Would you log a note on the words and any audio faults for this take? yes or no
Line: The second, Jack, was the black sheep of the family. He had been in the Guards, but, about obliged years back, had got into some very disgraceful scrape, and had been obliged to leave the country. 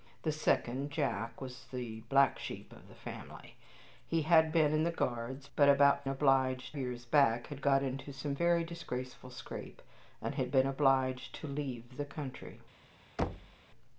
yes